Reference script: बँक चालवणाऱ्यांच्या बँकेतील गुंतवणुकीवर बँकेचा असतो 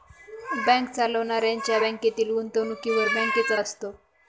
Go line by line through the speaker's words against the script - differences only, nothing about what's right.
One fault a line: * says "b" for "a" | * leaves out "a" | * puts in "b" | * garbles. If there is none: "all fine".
all fine